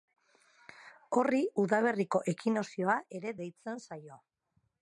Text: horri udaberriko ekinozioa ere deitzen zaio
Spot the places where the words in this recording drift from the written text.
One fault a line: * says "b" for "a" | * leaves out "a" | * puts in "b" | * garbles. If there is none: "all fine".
all fine